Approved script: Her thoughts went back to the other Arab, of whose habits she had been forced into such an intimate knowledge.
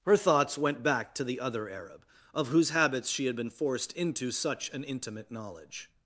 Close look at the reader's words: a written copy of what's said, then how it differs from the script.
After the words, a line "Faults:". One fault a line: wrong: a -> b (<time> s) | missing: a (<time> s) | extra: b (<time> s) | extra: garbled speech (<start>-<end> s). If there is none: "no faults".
Her thoughts went back to the other Arab, of whose habits she had been forced into such an intimate knowledge.
Faults:
no faults